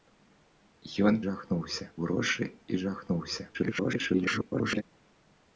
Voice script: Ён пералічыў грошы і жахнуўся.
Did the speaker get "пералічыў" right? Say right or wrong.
wrong